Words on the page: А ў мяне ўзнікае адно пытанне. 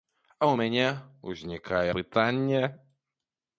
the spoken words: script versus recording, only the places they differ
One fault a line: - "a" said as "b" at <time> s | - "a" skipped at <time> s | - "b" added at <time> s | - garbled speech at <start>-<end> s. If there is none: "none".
- "адно" skipped at 1.9 s